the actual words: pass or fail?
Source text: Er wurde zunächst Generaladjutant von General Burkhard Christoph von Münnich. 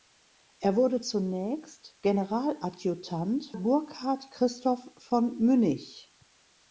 fail